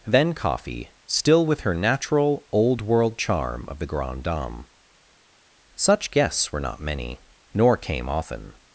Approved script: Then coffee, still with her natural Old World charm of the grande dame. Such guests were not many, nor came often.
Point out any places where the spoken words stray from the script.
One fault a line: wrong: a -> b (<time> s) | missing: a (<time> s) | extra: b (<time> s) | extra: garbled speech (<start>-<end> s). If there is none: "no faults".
no faults